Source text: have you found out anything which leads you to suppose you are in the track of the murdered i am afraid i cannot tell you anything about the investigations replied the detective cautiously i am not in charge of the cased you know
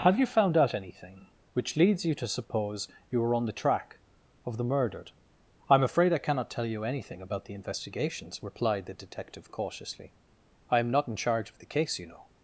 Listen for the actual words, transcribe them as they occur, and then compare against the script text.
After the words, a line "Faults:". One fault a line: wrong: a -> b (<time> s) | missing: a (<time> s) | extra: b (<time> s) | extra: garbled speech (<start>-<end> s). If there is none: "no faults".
have you found out anything which leads you to suppose you are on the track of the murdered i am afraid i cannot tell you anything about the investigations replied the detective cautiously i am not in charge of the case you know
Faults:
wrong: in -> on (3.3 s)
wrong: cased -> case (11.7 s)